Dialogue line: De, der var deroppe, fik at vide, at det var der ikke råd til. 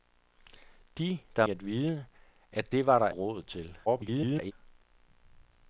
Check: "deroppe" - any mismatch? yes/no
yes